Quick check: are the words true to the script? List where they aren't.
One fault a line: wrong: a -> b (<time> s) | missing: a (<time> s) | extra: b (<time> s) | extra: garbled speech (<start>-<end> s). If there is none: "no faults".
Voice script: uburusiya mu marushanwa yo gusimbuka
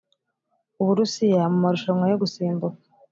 no faults